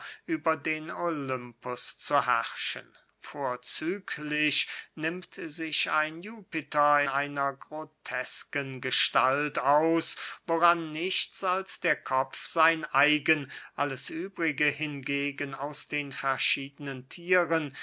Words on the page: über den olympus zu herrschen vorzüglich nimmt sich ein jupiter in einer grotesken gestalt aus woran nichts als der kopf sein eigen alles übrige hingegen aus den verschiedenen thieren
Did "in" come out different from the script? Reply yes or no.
yes